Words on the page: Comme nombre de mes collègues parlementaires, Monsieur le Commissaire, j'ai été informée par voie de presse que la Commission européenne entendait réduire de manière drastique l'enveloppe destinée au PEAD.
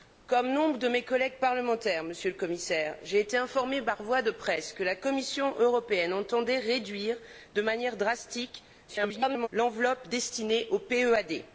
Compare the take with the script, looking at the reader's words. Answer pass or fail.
fail